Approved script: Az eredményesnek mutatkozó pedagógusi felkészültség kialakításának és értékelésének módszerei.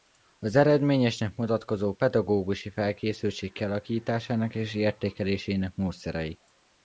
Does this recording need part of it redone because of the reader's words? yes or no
no